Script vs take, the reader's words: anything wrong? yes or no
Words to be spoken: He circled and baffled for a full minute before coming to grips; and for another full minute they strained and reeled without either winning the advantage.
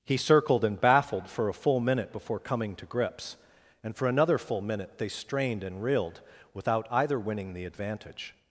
no